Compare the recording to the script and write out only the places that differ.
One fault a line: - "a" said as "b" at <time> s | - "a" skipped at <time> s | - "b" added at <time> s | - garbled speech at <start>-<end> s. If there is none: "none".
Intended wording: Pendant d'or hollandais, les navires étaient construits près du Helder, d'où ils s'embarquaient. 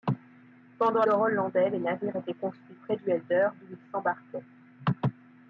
none